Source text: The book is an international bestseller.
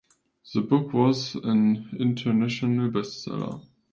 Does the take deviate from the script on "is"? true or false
true